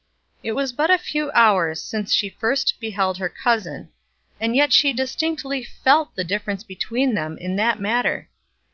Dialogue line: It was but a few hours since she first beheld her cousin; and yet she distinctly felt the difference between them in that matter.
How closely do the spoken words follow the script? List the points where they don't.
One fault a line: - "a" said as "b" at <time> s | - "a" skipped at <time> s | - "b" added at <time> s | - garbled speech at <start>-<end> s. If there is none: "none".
none